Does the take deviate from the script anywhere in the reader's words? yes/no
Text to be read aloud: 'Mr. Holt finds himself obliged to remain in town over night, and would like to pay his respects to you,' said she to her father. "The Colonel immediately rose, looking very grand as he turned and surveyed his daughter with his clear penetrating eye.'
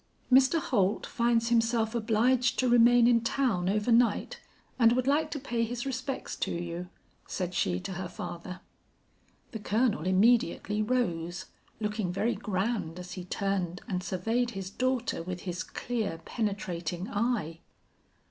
no